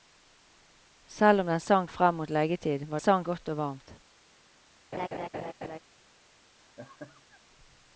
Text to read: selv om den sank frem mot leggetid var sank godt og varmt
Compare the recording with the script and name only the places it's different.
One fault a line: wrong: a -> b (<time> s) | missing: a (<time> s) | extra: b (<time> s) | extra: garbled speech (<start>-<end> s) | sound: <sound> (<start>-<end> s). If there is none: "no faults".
sound: laugh (4.9-5.8 s)
sound: laugh (6.6-7.4 s)